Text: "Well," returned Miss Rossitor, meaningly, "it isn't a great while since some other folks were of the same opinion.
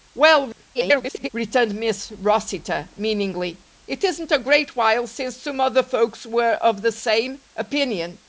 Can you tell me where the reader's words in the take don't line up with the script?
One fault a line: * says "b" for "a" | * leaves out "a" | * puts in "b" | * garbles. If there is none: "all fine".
* garbles